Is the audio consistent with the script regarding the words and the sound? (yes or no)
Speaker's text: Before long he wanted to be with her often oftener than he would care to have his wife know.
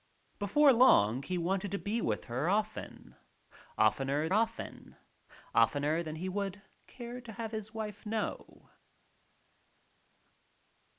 no